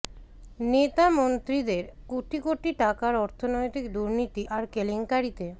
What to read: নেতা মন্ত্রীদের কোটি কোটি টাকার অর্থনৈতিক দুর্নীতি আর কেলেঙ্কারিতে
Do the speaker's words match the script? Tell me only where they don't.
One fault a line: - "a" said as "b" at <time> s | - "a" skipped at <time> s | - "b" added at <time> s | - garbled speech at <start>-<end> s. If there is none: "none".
none